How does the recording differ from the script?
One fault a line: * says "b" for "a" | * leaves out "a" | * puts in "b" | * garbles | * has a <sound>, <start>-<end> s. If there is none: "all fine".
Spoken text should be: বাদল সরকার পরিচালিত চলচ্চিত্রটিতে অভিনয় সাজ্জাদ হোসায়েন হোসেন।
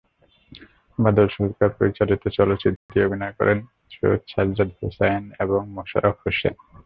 * has a dropout, 2.8-2.9 s
* puts in "করেন সৈয়দ"
* puts in "এবং মোশাররফ"